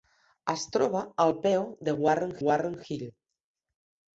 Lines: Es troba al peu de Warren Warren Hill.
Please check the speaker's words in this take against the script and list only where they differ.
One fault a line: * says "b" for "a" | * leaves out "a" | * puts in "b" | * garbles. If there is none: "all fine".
all fine